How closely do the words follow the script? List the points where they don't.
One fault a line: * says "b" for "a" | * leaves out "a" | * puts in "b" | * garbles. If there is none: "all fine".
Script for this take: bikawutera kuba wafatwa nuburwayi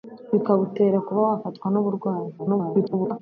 * garbles